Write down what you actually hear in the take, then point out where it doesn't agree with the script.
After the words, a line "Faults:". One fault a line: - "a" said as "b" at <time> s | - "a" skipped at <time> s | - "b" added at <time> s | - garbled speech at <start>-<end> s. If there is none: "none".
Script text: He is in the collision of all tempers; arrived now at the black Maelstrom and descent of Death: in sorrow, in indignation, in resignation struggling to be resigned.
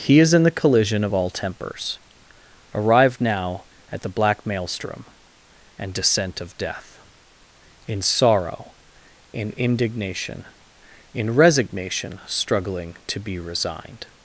He is in the collision of all tempers; arrived now at the black Maelstrom and descent of Death: in sorrow, in indignation, in resignation struggling to be resigned.
Faults:
none